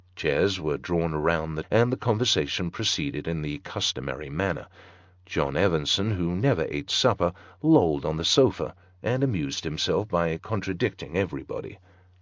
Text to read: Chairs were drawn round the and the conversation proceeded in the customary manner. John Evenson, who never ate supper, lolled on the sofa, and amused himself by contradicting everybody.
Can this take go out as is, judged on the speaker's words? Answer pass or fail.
pass